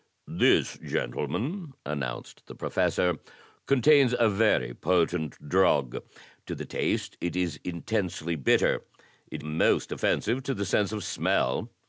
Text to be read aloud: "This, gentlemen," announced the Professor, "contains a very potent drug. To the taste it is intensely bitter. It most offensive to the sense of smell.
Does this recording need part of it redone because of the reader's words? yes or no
no